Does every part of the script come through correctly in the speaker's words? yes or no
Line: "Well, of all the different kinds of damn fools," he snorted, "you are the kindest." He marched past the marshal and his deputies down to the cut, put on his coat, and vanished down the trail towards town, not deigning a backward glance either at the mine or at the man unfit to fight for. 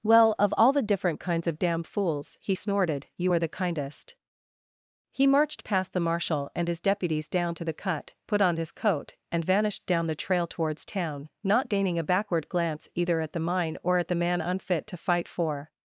yes